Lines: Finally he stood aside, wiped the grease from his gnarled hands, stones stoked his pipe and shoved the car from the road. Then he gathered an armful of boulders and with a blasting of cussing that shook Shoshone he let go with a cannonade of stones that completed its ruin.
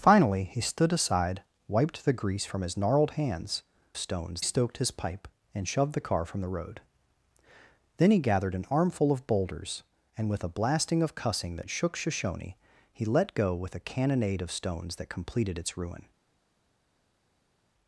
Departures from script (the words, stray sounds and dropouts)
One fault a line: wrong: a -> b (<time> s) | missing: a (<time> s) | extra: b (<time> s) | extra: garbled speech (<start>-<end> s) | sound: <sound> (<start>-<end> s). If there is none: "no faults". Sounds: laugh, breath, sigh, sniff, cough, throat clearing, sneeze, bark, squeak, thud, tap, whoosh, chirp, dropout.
no faults